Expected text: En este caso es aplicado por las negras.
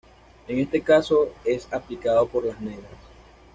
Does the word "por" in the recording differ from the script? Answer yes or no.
no